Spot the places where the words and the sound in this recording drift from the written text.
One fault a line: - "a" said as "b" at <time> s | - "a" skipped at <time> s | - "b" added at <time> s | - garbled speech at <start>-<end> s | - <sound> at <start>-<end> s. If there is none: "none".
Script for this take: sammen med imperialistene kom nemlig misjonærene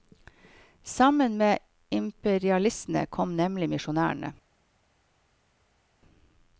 none